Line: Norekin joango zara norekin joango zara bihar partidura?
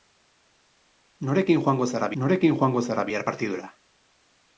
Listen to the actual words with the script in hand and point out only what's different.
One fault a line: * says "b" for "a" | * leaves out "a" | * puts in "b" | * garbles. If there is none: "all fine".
all fine